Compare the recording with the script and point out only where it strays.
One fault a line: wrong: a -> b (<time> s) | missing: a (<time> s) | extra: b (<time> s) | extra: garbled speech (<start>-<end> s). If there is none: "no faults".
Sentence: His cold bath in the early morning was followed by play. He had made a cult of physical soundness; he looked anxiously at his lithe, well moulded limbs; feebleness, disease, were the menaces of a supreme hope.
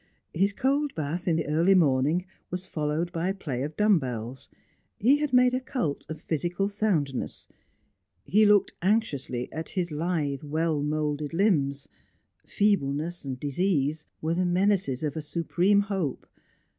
extra: of dumb bells (3.6 s)